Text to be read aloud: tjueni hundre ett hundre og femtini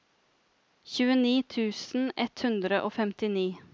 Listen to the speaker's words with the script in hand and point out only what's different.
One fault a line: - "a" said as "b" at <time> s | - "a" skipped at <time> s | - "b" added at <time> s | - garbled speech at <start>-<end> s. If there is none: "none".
- "hundre" said as "tusen" at 1.6 s